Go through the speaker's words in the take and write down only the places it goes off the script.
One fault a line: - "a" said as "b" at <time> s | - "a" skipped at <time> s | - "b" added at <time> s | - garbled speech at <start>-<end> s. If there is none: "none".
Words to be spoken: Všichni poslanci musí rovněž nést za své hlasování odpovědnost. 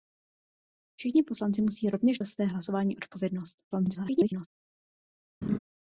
- "nést" skipped at 2.2 s
- garbled speech at 3.7-4.5 s